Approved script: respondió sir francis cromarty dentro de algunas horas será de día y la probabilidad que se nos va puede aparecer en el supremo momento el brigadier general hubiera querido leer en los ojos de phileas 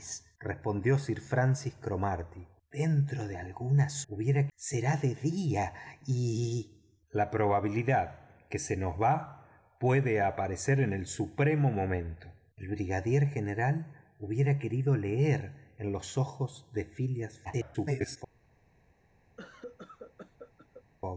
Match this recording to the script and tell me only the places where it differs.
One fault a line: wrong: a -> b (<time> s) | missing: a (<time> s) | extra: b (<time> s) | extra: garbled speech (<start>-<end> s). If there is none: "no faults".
wrong: horas -> hubiera (4.1 s)
extra: garbled speech (17.4-18.2 s)